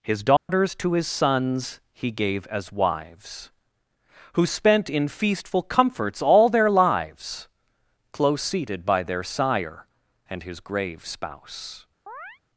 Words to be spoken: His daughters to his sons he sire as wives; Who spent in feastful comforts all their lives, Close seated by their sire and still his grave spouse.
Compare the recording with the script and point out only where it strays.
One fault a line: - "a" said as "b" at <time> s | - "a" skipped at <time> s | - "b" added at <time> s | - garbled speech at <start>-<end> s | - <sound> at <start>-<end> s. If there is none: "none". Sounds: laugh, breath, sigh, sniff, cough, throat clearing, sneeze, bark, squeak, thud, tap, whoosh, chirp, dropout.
- dropout at 0.4-0.5 s
- "sire" said as "gave" at 2.1 s
- "still" skipped at 10.4 s
- chirp at 12.1-12.4 s